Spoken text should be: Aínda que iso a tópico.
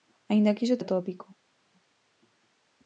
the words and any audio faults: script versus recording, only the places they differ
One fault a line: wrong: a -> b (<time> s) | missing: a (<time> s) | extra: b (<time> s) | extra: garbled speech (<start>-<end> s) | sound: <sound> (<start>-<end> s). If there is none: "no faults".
no faults